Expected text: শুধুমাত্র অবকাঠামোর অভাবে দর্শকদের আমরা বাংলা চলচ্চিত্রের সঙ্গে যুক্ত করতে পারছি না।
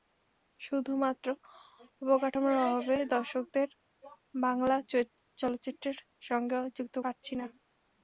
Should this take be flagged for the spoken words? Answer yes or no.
yes